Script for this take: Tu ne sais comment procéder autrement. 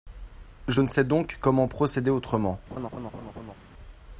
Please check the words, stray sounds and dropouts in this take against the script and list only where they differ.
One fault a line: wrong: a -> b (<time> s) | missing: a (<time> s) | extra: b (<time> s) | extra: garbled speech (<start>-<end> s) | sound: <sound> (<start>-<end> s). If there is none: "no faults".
wrong: Tu -> Je (0.7 s)
extra: donc (1.0 s)
sound: laugh (2.7-3.5 s)